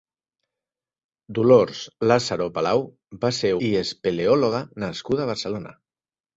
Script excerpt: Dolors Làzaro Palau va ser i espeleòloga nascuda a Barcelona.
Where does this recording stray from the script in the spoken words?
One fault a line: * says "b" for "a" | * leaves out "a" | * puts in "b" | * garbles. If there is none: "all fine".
all fine